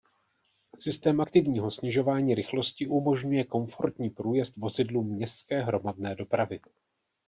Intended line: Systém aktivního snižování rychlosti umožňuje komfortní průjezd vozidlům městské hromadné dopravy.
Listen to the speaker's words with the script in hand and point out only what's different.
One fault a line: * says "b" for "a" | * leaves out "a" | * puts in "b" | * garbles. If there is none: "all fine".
all fine